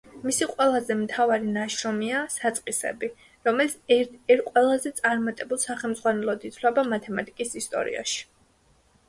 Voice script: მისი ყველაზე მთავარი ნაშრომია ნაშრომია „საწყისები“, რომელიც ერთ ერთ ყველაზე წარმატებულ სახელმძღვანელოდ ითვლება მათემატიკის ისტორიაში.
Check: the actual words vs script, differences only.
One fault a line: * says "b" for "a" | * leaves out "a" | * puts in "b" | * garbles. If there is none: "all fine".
* leaves out "ნაშრომია"